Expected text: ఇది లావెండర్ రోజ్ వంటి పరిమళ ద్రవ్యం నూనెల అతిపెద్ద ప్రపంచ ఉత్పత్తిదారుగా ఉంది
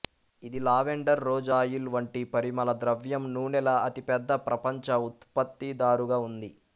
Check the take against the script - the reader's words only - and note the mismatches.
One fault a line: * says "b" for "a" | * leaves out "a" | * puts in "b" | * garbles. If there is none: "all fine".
* puts in "ఆయిల్"